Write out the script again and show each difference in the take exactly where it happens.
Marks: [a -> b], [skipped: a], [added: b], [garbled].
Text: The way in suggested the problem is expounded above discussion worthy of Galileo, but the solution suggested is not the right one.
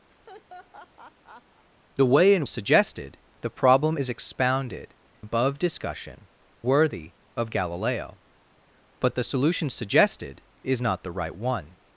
The way in suggested the problem is expounded above discussion worthy of Galileo, but the solution suggested is not the right one.